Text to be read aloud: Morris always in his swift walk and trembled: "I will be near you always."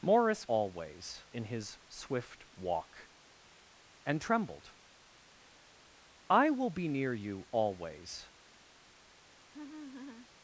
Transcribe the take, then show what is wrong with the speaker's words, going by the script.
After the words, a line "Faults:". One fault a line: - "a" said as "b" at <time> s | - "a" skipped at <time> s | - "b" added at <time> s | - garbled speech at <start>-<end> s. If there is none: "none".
Morris always in his swift walk and trembled: "I will be near you always."
Faults:
none